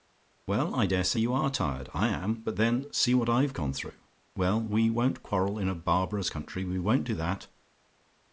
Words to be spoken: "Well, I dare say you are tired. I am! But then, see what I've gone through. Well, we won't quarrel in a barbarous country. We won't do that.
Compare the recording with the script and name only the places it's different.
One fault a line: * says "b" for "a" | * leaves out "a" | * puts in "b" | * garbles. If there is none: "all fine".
all fine